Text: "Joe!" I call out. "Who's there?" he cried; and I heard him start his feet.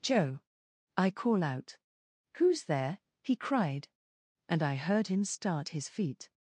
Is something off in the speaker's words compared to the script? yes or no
no